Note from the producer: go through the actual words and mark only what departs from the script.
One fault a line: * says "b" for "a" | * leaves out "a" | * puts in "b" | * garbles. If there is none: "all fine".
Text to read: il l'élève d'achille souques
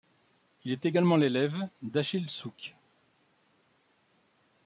* puts in "est également"